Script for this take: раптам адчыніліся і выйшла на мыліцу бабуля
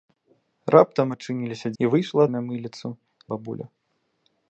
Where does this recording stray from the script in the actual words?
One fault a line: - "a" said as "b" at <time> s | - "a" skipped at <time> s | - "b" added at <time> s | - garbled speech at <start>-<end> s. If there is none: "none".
none